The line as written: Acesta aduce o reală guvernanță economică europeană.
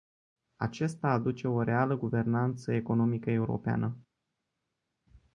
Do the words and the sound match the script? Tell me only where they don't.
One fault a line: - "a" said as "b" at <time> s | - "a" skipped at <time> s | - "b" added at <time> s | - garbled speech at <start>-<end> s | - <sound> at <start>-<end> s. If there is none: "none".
none